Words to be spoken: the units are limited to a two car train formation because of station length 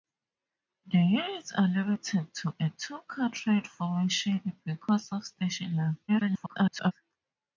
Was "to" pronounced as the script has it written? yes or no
yes